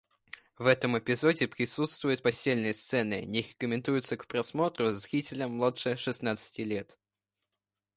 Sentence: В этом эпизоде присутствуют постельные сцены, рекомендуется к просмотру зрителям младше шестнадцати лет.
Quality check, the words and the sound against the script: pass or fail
fail